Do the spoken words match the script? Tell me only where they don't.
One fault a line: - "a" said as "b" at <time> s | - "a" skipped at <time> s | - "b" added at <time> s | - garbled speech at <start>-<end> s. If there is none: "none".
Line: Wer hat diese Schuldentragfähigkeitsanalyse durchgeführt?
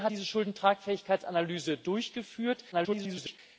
- "hat" skipped at 0.1 s
- garbled speech at 2.7-3.4 s